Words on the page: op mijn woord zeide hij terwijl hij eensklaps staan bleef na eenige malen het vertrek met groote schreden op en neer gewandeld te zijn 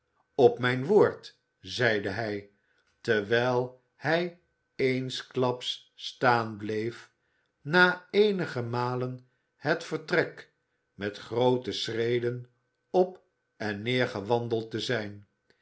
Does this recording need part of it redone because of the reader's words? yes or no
no